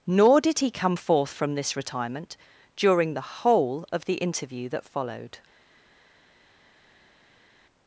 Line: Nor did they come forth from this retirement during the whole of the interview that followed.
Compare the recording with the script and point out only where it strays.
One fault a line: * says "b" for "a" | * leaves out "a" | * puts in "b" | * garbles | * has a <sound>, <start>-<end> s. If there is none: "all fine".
* says "he" for "they"